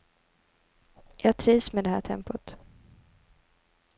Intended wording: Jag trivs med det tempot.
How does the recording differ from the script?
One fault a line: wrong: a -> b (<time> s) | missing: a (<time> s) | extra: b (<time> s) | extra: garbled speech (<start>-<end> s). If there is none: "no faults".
extra: här (1.9 s)